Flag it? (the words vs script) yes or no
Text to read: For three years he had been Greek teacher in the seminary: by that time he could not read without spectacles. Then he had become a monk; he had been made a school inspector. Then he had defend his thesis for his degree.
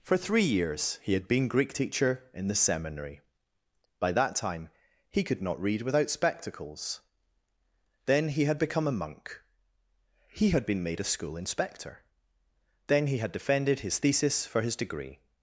yes